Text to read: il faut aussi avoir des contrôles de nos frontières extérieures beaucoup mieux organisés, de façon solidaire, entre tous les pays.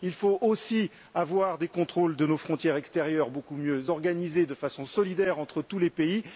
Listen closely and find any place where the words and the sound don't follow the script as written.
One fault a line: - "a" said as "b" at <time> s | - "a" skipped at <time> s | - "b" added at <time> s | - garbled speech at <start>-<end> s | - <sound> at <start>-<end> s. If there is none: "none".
none